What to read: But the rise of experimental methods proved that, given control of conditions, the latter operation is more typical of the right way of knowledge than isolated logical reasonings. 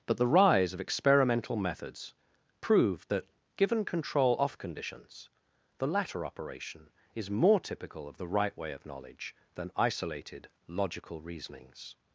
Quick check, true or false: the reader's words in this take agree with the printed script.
false